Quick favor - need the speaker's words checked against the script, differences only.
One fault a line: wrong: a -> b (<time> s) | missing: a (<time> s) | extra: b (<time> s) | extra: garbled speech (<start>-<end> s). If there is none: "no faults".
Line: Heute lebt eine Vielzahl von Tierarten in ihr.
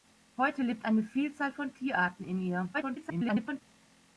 extra: garbled speech (2.7-3.6 s)